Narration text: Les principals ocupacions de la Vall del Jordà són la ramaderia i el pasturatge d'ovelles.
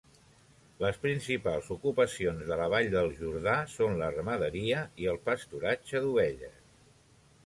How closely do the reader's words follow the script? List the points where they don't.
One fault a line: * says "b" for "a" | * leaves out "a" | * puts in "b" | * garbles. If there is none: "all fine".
all fine